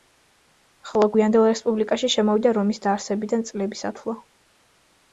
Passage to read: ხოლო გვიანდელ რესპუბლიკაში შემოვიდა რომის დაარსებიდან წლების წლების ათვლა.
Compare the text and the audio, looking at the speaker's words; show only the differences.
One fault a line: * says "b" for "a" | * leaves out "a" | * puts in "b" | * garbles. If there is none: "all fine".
* leaves out "წლების"